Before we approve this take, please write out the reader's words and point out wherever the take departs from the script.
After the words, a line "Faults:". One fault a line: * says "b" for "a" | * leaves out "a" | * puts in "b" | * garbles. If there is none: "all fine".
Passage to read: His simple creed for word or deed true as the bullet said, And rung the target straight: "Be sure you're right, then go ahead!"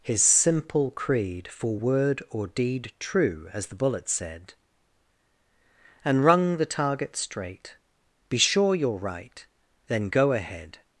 His simple creed for word or deed true as the bullet said, And rung the target straight: "Be sure you're right, then go ahead!"
Faults:
all fine